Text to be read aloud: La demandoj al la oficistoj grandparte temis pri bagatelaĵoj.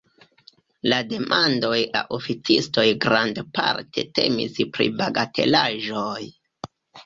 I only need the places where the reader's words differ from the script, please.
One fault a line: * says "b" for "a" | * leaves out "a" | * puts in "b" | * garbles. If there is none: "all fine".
* leaves out "al"